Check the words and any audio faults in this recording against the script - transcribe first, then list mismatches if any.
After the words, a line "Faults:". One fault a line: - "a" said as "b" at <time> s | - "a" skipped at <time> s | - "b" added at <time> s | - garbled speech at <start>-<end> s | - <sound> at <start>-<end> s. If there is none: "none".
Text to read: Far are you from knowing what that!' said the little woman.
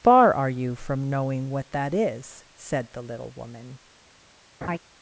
Far are you from knowing what that is!' said the little woman.
Faults:
- "is" added at 1.9 s
- laugh at 4.6-4.8 s